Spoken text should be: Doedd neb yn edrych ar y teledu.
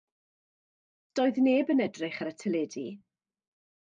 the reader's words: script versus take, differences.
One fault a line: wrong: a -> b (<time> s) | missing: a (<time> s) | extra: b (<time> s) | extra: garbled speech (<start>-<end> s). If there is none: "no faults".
no faults